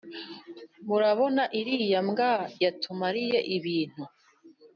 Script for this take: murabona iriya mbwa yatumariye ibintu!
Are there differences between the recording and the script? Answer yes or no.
no